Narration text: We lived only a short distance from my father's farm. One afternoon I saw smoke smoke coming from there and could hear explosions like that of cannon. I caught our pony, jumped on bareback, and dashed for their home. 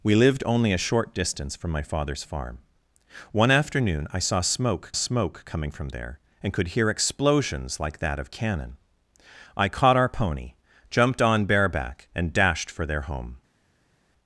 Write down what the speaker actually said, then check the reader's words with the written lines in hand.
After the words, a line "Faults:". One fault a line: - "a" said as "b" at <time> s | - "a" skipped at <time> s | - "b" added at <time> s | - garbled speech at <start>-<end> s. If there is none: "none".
We lived only a short distance from my father's farm. One afternoon I saw smoke smoke coming from there and could hear explosions like that of cannon. I caught our pony, jumped on bareback, and dashed for their home.
Faults:
none